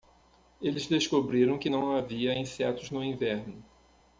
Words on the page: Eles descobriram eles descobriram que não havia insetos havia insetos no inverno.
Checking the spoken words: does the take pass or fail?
fail